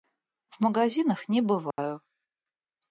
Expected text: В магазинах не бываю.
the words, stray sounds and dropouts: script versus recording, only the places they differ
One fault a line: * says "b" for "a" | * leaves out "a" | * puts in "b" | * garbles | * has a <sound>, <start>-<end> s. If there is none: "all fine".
* has a dropout, 1.7-1.8 s